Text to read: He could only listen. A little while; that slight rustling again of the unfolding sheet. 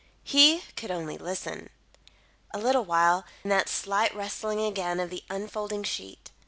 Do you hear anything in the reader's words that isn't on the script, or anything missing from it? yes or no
no